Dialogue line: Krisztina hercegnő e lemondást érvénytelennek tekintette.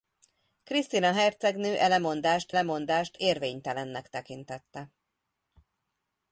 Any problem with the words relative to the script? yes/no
yes